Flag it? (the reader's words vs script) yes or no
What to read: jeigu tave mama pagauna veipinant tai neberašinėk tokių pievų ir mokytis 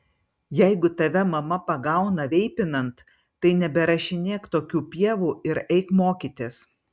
yes